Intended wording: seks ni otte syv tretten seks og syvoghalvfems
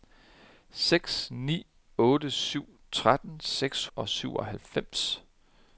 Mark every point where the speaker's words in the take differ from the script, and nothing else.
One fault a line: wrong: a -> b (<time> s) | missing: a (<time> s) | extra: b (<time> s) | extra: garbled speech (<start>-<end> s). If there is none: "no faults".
no faults